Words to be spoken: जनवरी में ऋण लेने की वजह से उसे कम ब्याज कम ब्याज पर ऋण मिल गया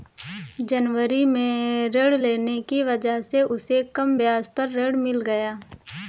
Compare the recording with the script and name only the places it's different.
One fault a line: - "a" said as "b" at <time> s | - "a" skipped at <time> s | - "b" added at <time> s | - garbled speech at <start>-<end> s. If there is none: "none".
- "कम ब्याज" skipped at 4.5 s